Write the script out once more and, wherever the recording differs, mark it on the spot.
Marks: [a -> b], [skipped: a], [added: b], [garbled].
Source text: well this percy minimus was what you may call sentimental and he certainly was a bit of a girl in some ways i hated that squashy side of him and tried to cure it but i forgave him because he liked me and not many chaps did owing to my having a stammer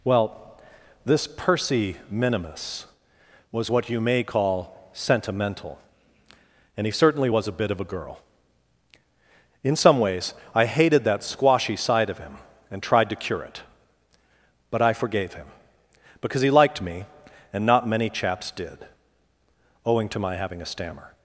well this percy minimus was what you may call sentimental and he certainly was a bit of a girl in some ways i hated that squashy side of him and tried to cure it but i forgave him because he liked me and not many chaps did owing to my having a stammer